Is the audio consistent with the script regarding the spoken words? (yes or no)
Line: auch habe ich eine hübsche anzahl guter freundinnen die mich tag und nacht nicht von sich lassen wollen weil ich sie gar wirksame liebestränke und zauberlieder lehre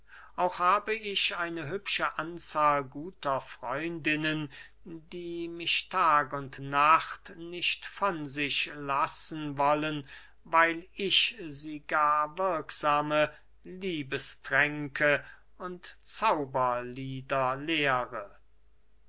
yes